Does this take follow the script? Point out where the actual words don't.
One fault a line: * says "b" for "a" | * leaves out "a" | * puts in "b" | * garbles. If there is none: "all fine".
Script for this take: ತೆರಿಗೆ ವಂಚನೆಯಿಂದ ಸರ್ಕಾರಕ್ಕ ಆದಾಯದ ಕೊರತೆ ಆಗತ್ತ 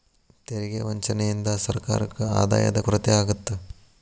all fine